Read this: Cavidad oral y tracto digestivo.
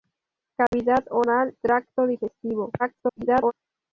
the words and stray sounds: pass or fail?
fail